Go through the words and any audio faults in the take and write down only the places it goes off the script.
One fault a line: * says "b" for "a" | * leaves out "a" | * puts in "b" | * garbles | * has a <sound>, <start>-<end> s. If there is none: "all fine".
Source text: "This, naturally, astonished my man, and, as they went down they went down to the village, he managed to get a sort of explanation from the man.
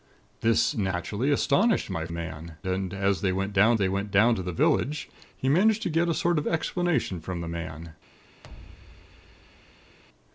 * has a thud, 8.4-10.0 s